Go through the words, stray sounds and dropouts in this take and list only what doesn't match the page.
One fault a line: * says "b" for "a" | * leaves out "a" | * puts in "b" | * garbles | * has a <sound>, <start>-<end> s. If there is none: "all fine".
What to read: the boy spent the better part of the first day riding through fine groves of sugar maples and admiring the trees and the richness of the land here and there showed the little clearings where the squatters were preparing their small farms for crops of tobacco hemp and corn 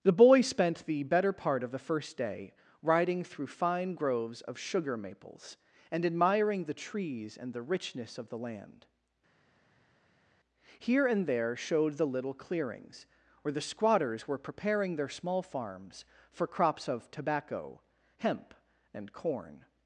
all fine